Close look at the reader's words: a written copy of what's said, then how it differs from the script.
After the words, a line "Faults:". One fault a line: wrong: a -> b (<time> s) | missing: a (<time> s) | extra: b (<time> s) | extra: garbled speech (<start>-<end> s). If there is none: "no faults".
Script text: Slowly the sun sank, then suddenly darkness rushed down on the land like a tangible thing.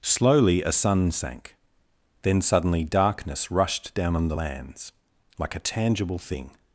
Slowly a sun sank, then suddenly darkness rushed down on the lands like a tangible thing.
Faults:
wrong: the -> a (0.6 s)
wrong: land -> lands (4.3 s)